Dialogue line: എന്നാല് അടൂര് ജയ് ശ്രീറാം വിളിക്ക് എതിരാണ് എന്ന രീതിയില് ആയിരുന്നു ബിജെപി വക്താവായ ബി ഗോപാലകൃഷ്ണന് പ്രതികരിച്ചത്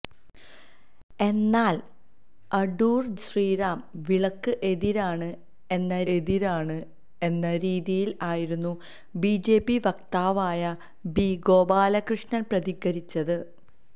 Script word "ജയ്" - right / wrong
wrong